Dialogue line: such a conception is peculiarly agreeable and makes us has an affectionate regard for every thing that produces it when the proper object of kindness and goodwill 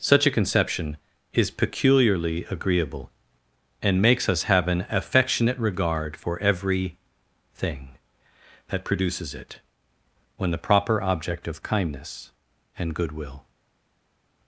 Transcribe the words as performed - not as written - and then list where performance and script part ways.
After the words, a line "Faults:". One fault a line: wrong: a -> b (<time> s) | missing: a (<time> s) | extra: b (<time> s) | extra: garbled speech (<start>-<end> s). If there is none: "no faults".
such a conception is peculiarly agreeable and makes us have an affectionate regard for every thing that produces it when the proper object of kindness and goodwill
Faults:
wrong: has -> have (4.5 s)